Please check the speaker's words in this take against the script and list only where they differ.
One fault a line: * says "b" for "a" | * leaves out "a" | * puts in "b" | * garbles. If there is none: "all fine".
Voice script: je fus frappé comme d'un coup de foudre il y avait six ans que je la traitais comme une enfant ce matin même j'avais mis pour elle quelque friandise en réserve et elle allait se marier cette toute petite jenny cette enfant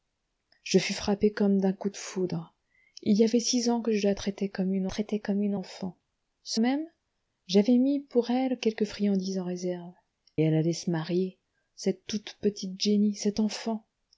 * puts in "traitais comme une"
* leaves out "matin"
* leaves out "et"